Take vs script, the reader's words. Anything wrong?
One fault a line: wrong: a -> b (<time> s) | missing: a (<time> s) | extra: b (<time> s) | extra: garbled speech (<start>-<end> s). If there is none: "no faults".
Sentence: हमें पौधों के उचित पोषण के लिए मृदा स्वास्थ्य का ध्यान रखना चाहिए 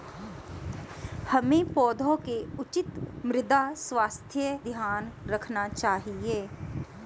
missing: पोषण के लिए (2.9 s)
missing: का (4.6 s)